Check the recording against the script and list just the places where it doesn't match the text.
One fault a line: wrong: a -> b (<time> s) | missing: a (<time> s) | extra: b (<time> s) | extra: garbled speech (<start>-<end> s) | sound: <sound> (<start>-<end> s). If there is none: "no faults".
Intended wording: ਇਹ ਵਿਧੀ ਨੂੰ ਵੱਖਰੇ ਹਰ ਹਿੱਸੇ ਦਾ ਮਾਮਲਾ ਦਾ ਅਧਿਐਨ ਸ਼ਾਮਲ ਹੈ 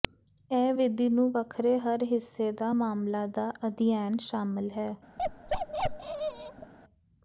sound: bark (5.2-6.7 s)